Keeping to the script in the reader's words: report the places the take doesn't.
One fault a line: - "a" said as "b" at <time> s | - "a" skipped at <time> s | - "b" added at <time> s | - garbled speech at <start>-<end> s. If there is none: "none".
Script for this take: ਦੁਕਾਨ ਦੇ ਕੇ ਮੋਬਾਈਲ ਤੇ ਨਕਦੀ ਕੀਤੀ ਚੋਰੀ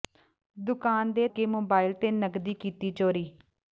none